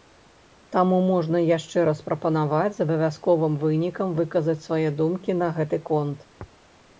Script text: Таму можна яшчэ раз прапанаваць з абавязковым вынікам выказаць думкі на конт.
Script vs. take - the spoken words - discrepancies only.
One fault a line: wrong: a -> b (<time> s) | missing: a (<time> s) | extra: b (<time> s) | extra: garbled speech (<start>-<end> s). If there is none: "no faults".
extra: свае (4.7 s)
extra: гэты (5.6 s)